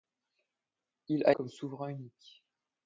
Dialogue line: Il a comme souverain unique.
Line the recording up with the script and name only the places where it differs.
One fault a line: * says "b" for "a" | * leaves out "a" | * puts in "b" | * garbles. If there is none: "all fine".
all fine